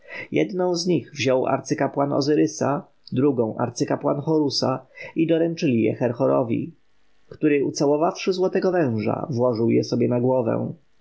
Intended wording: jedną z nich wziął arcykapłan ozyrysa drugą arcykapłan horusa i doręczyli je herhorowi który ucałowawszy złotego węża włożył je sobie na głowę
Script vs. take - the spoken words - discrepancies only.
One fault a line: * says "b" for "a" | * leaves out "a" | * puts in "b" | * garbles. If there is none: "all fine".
all fine